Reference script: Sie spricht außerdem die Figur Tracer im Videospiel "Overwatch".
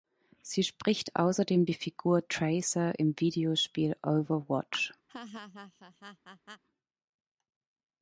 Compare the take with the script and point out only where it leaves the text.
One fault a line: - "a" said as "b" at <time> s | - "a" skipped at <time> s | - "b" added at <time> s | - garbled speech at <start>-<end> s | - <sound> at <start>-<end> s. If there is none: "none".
- laugh at 5.1-6.6 s